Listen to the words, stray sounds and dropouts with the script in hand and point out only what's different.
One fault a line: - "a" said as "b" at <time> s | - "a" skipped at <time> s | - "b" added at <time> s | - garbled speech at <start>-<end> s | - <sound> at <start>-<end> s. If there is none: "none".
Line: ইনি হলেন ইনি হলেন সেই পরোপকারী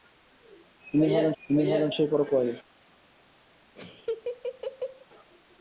- laugh at 3.8-5.1 s